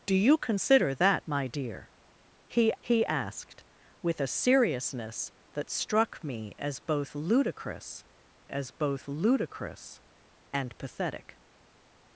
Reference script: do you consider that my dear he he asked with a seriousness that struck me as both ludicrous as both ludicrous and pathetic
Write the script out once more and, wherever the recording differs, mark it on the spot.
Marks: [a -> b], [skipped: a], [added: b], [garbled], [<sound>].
do you consider that my dear he he asked with a seriousness that struck me as both ludicrous as both ludicrous and pathetic